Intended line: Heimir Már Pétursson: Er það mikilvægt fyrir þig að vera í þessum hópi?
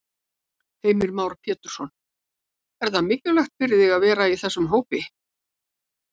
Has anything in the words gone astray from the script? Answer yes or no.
no